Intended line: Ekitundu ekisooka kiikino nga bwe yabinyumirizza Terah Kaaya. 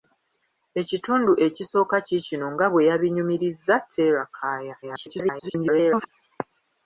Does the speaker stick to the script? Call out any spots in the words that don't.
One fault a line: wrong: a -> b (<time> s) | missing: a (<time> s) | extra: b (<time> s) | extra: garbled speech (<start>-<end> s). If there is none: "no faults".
extra: garbled speech (4.8-6.1 s)